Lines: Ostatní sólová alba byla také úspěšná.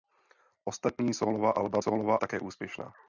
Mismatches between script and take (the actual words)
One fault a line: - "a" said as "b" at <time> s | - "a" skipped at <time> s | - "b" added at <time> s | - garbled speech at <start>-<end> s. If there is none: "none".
- "byla" said as "sólová" at 1.8 s